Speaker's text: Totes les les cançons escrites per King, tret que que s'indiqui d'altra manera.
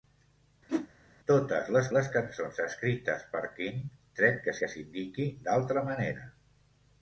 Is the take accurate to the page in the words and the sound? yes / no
no